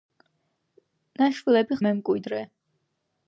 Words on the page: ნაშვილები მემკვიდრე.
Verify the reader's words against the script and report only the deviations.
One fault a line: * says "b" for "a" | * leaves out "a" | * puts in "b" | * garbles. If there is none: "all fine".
all fine